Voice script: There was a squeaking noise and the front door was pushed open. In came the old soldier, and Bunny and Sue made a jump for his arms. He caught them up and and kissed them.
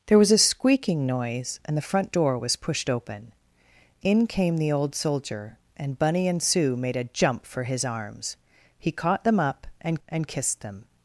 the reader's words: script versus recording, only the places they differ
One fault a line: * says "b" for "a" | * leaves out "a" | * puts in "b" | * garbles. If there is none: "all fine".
all fine